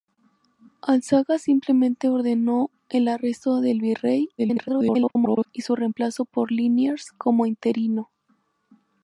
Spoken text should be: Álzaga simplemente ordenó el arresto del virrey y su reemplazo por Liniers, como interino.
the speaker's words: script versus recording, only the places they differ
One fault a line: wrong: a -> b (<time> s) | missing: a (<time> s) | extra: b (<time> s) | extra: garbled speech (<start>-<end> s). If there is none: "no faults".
extra: garbled speech (4.4-5.5 s)